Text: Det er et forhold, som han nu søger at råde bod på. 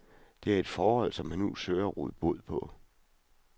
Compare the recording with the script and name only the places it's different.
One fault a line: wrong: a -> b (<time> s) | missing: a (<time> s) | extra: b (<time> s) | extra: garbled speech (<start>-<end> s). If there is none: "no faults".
no faults